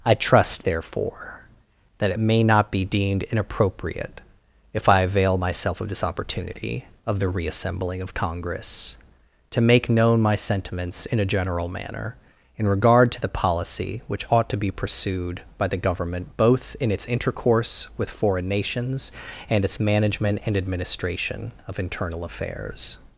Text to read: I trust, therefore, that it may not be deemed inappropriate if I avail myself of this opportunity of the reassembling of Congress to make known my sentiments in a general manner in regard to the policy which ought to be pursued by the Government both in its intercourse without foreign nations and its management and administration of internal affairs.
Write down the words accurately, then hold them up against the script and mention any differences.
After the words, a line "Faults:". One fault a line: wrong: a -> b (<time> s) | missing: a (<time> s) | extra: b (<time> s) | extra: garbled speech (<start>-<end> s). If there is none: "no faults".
I trust, therefore, that it may not be deemed inappropriate if I avail myself of this opportunity of the reassembling of Congress to make known my sentiments in a general manner in regard to the policy which ought to be pursued by the Government both in its intercourse with foreign nations and its management and administration of internal affairs.
Faults:
wrong: without -> with (18.0 s)